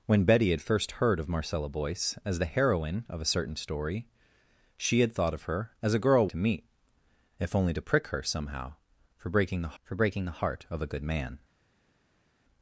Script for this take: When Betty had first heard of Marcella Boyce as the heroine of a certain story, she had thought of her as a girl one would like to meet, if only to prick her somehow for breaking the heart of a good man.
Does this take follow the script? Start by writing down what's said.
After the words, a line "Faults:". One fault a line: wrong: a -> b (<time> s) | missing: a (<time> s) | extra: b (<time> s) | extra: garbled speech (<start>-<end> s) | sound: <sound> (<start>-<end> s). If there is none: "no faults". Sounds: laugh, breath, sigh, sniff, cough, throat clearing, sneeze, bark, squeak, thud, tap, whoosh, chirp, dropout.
When Betty had first heard of Marcella Boyce as the heroine of a certain story, she had thought of her as a girl to meet, if only to prick her somehow for breaking the for breaking the heart of a good man.
Faults:
missing: one would like (6.3 s)
extra: for breaking the (9.8 s)